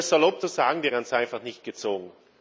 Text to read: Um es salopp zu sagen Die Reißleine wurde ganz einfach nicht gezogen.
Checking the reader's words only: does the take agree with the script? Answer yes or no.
no